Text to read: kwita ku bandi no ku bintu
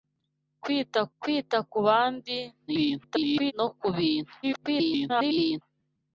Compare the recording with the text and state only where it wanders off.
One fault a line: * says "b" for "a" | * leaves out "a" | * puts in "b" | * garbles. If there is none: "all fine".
* puts in "kwita"
* garbles
* garbles